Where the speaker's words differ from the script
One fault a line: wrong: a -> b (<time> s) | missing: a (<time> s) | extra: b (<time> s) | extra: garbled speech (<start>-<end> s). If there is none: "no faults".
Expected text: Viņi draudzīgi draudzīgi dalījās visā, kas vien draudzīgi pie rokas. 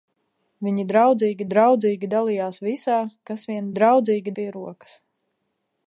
no faults